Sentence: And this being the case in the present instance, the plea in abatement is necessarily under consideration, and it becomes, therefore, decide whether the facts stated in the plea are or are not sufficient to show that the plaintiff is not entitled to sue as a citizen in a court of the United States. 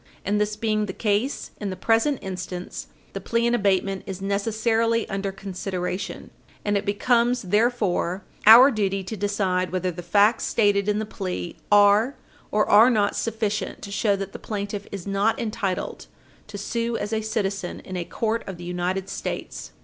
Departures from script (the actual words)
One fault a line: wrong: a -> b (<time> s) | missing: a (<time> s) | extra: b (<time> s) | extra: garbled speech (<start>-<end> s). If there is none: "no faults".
extra: our duty to (8.5 s)